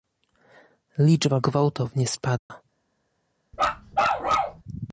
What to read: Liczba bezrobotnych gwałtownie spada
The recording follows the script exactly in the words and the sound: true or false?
false